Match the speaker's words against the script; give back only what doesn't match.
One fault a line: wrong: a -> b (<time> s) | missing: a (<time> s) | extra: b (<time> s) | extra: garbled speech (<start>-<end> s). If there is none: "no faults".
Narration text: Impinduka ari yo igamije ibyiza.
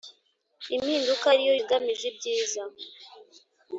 no faults